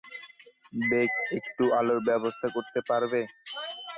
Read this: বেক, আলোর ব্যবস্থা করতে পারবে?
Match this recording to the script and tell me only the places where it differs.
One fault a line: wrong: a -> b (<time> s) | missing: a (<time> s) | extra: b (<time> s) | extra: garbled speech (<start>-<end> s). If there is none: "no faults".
extra: একটু (1.4 s)